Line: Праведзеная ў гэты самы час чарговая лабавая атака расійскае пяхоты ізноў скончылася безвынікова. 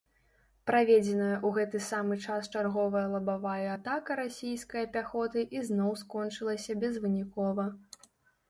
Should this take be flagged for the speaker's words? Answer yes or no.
no